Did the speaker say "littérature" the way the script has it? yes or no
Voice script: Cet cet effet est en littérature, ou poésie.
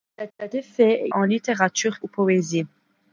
yes